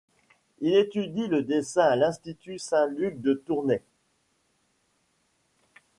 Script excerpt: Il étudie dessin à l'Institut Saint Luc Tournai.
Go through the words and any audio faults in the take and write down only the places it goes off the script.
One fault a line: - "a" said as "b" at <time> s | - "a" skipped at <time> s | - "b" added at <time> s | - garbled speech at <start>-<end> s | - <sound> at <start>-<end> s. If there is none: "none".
- "le" added at 1.3 s
- "de" added at 3.2 s